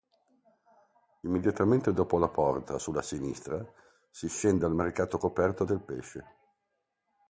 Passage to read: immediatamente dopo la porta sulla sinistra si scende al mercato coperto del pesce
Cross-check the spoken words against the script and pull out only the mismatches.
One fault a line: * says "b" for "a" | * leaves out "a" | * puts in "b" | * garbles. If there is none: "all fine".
all fine